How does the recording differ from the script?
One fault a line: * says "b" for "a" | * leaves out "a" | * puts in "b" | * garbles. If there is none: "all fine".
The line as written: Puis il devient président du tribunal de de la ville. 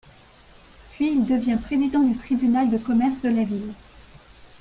* puts in "commerce"